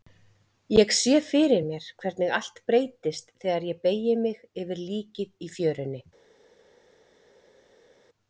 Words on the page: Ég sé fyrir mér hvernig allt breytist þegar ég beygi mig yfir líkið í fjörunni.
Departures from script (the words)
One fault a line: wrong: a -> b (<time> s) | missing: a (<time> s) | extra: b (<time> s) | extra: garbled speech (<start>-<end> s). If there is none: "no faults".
no faults